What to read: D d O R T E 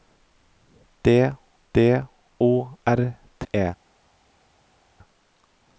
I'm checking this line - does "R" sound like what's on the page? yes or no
yes